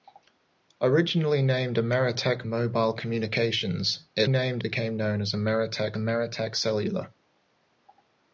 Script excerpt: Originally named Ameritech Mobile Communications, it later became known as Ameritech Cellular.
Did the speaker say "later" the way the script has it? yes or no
no